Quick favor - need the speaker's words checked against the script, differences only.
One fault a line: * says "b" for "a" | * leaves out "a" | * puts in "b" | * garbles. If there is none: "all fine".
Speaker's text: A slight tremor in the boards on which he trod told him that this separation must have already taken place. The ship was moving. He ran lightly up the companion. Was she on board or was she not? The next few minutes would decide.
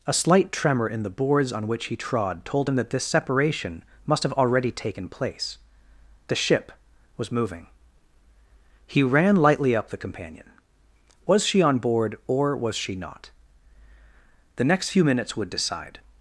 all fine